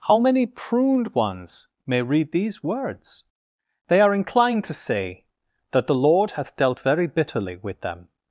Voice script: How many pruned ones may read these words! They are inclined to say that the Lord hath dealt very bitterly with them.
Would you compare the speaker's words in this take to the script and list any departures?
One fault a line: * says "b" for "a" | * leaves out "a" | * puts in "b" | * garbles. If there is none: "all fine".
all fine